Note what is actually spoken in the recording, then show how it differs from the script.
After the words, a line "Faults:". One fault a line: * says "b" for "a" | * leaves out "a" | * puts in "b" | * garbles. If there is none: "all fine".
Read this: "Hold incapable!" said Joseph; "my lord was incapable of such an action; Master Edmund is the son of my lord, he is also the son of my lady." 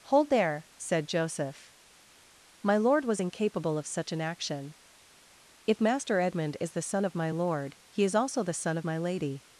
"Hold there!" said Joseph; "my lord was incapable of such an action; If Master Edmund is the son of my lord, he is also the son of my lady."
Faults:
* says "there" for "incapable"
* puts in "If"